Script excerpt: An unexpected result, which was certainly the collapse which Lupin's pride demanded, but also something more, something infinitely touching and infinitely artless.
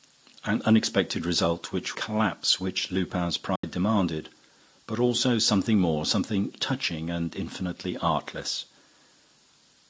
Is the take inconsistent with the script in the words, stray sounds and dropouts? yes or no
yes